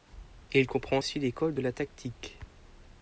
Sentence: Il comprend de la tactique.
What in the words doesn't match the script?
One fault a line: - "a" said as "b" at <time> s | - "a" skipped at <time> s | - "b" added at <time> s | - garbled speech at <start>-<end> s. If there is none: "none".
- "aussi l'école" added at 1.0 s